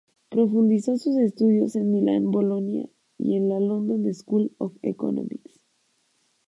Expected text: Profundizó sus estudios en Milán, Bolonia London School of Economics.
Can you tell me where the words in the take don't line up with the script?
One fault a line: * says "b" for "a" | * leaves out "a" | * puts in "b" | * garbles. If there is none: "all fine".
* puts in "y en la"